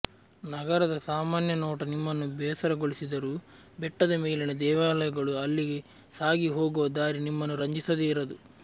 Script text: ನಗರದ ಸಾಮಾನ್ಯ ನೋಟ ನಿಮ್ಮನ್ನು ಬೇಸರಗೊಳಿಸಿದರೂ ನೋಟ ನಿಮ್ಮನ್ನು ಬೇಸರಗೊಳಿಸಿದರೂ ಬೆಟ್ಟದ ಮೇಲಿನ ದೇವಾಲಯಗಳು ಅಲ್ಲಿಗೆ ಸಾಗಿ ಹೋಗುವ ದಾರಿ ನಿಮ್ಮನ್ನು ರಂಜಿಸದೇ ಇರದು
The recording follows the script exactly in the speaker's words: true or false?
false